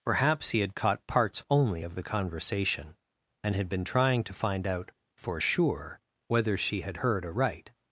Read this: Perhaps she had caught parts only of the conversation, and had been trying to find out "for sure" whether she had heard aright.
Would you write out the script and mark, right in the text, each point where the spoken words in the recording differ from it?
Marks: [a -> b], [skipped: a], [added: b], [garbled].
Perhaps [she -> he] had caught parts only of the conversation, and had been trying to find out "for sure" whether she had heard aright.